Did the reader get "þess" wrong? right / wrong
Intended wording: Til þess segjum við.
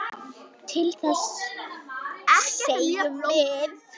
right